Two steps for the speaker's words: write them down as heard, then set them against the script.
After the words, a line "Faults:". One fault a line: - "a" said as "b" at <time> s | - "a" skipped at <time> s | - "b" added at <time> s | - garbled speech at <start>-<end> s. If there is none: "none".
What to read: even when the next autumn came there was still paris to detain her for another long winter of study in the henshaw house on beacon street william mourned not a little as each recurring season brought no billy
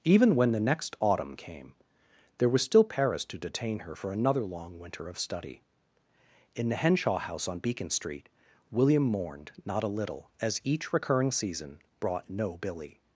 even when the next autumn came there was still paris to detain her for another long winter of study in the henshaw house on beacon street william mourned not a little as each recurring season brought no billy
Faults:
none